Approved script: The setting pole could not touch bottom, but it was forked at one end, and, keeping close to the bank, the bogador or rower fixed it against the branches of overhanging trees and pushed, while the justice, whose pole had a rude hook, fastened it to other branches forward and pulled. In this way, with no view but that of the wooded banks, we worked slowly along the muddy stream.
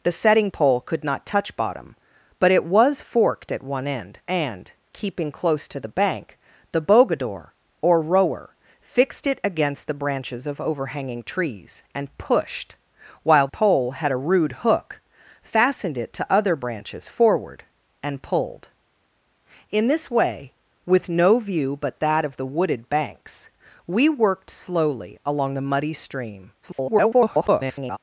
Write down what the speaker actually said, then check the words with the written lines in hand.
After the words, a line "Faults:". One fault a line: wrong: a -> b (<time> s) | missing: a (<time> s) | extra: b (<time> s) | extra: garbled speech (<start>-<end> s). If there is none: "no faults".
The setting pole could not touch bottom, but it was forked at one end, and, keeping close to the bank, the bogador or rower fixed it against the branches of overhanging trees and pushed, while pole had a rude hook, fastened it to other branches forward and pulled. In this way, with no view but that of the wooded banks, we worked slowly along the muddy stream. [garbled]
Faults:
missing: the justice whose (13.5 s)
extra: garbled speech (26.6-28.0 s)